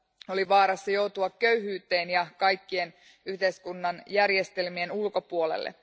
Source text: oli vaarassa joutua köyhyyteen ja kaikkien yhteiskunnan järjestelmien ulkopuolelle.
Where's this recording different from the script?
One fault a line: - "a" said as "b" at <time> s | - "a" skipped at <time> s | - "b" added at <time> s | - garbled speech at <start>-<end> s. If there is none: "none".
none